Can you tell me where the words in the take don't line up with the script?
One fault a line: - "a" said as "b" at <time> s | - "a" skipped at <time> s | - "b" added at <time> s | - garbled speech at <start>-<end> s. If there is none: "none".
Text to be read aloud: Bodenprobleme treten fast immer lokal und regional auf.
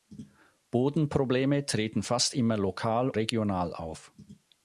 - "und" skipped at 3.1 s